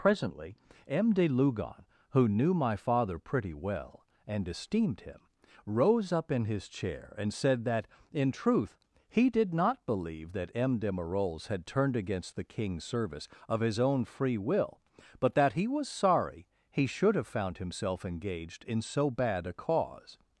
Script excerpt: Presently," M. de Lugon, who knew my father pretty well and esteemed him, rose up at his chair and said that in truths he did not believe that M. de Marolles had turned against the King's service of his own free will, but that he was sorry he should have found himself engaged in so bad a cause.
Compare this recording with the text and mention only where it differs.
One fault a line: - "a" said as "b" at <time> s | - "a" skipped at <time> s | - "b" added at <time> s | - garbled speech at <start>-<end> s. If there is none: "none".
- "at" said as "in" at 6.3 s
- "truths" said as "truth" at 8.3 s